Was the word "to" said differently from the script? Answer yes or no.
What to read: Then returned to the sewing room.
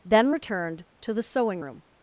no